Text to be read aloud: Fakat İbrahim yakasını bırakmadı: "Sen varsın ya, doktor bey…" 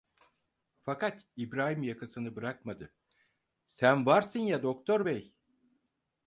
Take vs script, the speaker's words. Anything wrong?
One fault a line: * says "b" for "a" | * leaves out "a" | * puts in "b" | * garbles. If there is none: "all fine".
all fine